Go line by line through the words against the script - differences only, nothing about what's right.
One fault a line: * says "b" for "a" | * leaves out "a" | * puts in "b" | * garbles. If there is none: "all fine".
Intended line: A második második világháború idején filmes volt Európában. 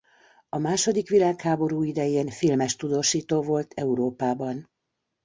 * leaves out "második"
* puts in "tudósító"